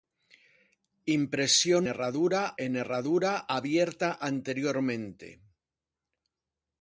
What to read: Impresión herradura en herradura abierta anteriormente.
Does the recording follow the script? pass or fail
pass